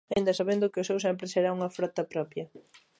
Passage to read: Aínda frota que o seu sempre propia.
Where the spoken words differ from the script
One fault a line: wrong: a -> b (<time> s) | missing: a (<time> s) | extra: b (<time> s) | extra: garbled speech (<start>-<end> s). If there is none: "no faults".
wrong: frota -> sabendo (0.4 s)
extra: será unha frota (1.3 s)